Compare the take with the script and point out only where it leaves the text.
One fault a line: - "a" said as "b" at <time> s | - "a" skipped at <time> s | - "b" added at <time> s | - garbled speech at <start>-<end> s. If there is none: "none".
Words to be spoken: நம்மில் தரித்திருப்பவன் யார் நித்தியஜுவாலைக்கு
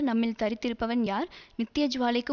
none